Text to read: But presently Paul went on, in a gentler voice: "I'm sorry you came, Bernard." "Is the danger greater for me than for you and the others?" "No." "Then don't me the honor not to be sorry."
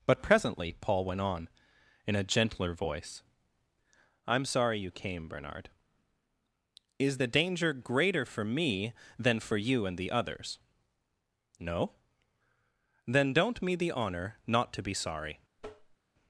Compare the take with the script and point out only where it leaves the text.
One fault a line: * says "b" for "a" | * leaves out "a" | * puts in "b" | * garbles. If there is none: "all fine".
all fine